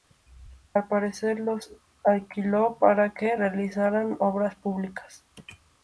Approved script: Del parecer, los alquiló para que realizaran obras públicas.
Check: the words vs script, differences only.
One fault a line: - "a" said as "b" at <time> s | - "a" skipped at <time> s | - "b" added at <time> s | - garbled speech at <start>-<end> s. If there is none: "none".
- "Del" said as "Al" at 0.7 s